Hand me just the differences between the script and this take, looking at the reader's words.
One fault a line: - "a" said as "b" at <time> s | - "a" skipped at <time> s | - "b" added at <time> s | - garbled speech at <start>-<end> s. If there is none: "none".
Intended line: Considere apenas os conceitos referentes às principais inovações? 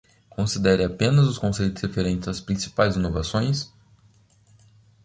none